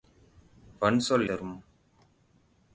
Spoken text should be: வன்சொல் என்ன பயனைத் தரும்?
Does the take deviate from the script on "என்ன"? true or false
true